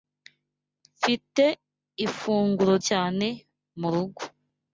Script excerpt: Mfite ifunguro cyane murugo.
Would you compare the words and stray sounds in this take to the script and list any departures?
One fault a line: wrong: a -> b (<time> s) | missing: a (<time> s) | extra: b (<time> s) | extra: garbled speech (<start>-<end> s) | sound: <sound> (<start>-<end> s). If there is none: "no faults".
no faults